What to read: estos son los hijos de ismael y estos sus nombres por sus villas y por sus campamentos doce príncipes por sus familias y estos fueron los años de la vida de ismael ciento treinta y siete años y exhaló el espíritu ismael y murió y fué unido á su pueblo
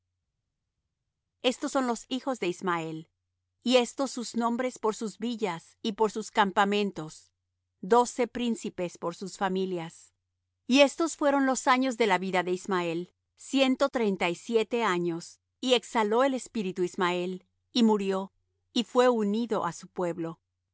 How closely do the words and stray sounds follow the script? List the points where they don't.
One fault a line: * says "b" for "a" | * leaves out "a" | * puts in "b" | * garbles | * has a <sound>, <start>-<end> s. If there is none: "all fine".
all fine